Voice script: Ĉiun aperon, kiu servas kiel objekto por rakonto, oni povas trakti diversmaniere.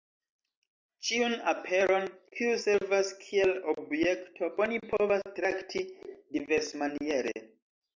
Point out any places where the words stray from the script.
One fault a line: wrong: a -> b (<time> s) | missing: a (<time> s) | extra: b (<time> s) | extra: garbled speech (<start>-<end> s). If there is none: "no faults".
missing: por rakonto (4.5 s)